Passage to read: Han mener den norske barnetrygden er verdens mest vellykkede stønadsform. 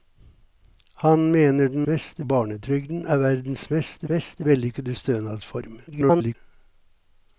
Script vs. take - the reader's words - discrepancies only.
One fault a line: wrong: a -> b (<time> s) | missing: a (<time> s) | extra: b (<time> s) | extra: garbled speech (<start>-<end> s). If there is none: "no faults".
wrong: norske -> mest (1.9 s)
extra: mest (4.1 s)
extra: garbled speech (5.9-6.4 s)